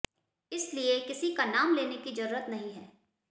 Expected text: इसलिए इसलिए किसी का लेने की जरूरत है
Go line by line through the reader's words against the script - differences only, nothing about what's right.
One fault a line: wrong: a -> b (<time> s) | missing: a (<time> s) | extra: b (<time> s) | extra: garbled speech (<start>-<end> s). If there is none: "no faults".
missing: इसलिए (1.0 s)
extra: नाम (1.4 s)
extra: नहीं (2.5 s)